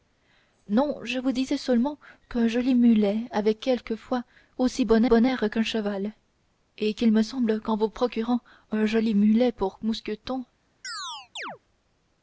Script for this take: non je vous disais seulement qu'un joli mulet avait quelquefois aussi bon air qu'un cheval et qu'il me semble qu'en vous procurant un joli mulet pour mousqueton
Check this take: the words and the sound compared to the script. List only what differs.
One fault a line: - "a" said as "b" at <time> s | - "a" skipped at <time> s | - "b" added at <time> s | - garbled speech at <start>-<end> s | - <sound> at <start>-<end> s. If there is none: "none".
- "bon" added at 5.0 s
- chirp at 10.8-11.6 s